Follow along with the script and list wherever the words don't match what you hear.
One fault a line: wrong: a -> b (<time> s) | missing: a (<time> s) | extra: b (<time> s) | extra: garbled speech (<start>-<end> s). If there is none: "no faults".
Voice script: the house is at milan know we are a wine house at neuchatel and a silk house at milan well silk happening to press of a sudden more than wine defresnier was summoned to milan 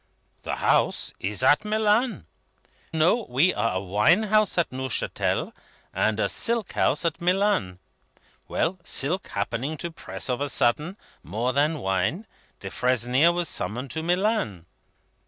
no faults